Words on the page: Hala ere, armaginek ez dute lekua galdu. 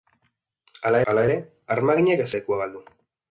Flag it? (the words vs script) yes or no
yes